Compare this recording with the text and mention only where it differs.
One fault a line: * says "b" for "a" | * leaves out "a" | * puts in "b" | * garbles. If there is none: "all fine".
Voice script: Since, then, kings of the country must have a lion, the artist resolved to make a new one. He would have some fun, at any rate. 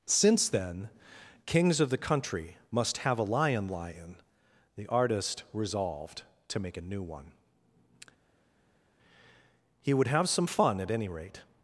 * puts in "lion"